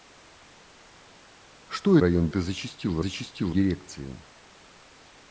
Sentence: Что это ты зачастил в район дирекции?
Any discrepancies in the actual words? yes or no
yes